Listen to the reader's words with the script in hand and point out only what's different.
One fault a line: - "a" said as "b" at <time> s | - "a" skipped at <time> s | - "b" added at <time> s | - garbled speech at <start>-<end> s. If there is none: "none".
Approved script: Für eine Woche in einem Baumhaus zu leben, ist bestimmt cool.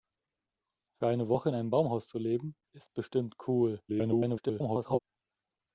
- garbled speech at 3.9-5.0 s